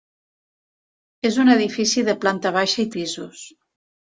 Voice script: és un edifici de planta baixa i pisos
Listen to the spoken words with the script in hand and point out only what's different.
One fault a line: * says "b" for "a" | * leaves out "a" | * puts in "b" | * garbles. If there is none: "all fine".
all fine